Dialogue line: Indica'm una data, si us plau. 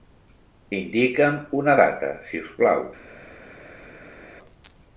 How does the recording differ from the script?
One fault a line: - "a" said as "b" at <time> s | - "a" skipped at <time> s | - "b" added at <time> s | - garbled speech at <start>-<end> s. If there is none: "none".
none